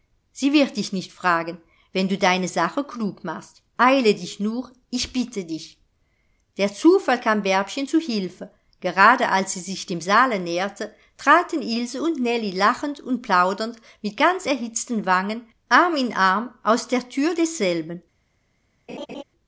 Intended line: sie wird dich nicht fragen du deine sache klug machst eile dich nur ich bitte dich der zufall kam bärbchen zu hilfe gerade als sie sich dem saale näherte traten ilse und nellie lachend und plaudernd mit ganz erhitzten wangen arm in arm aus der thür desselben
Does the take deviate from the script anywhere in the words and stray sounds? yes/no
yes